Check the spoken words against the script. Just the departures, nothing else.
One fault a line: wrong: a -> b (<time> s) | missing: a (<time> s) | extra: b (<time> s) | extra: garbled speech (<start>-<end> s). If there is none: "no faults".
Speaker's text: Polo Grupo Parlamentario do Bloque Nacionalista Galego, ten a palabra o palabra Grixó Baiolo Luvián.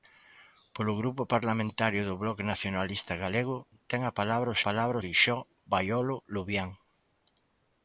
no faults